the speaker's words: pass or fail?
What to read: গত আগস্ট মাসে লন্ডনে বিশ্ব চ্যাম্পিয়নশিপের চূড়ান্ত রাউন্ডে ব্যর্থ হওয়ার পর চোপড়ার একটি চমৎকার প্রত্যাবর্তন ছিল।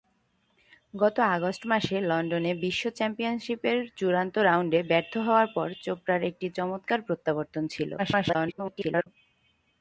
fail